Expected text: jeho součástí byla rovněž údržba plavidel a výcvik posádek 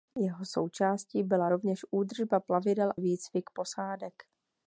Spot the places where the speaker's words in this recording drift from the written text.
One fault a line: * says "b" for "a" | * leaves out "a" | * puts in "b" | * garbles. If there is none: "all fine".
* leaves out "a"